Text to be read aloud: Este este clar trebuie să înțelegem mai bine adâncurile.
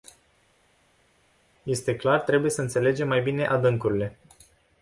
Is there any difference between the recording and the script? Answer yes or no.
yes